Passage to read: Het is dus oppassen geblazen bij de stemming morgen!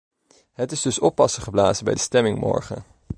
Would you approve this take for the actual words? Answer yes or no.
yes